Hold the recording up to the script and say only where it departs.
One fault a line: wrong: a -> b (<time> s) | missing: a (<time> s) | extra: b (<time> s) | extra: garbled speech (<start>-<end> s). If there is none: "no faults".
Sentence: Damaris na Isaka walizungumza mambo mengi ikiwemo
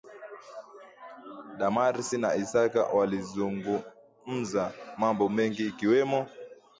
no faults